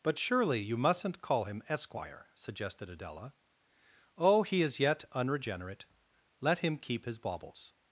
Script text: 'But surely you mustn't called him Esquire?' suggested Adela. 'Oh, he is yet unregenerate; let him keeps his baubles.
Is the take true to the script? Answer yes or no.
no